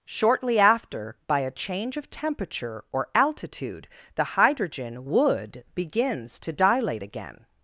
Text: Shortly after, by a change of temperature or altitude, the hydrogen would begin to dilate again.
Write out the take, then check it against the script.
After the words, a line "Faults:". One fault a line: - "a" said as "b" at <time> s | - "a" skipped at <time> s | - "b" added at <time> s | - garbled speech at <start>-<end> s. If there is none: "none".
Shortly after, by a change of temperature or altitude, the hydrogen would begins to dilate again.
Faults:
- "begin" said as "begins" at 5.7 s